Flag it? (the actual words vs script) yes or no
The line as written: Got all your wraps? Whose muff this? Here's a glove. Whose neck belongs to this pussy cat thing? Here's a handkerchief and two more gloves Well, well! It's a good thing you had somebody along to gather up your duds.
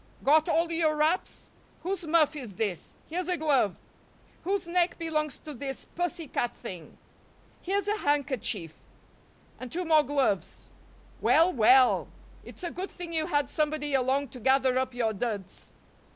yes